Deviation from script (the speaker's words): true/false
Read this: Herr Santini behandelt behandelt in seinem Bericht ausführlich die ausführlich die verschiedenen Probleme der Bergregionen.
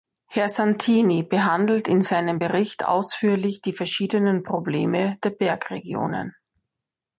true